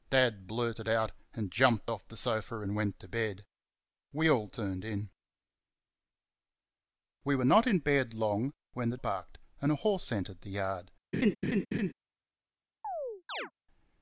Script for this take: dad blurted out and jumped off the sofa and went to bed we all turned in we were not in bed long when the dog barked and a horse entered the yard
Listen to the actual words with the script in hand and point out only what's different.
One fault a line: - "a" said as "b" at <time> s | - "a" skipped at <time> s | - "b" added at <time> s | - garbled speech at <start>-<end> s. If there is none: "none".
- "dog" skipped at 9.0 s